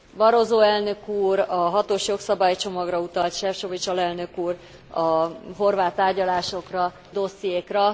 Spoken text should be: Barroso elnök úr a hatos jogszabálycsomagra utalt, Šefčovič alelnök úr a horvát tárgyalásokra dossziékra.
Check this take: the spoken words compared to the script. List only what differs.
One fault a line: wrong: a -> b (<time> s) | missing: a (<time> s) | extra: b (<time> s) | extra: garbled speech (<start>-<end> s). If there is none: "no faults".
no faults